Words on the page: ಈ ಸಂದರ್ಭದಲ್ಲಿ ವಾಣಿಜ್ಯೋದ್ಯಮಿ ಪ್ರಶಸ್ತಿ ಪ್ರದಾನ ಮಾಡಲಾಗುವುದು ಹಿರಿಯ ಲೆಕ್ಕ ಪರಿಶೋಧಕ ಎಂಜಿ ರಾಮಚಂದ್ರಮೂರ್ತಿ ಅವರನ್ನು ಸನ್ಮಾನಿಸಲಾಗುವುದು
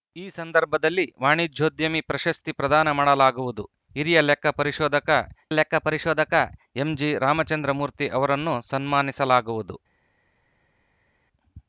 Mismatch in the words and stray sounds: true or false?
true